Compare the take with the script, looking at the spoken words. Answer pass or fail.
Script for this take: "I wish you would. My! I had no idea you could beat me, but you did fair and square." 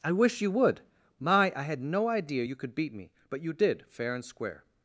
pass